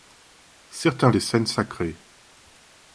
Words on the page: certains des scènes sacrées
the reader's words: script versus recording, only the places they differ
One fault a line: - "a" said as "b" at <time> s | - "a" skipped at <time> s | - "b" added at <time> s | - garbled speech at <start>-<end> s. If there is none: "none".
none